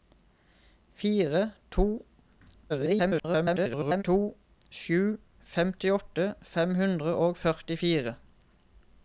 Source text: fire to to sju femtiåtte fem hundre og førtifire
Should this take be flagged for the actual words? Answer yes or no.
yes